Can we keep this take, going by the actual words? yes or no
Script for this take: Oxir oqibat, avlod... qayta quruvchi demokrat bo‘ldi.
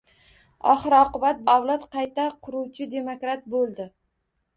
yes